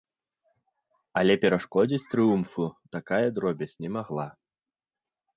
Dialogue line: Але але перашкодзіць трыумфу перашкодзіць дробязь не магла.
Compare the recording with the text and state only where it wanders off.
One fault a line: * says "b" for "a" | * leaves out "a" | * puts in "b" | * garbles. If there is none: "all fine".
* leaves out "але"
* says "такая" for "перашкодзіць"